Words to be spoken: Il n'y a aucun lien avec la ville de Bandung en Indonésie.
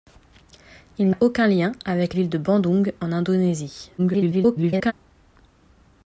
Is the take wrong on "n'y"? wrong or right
wrong